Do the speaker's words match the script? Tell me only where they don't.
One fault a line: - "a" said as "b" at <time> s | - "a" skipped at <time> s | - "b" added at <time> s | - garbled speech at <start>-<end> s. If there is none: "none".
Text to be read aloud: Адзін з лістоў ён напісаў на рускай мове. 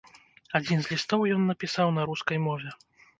none